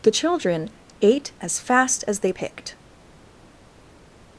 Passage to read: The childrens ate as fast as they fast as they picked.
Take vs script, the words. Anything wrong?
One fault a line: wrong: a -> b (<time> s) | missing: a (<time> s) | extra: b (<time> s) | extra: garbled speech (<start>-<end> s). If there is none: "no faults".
wrong: childrens -> children (0.1 s)
missing: fast as they (2.3 s)